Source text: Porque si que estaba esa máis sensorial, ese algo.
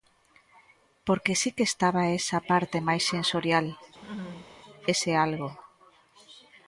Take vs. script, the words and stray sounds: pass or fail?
fail